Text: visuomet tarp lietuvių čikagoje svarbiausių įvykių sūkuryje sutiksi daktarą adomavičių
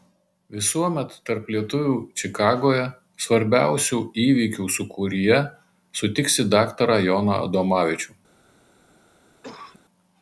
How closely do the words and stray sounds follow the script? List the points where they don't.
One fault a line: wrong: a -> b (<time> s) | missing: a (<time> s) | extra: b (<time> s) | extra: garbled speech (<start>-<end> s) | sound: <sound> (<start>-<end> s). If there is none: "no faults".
extra: joną (7.1 s)
sound: cough (9.4-9.8 s)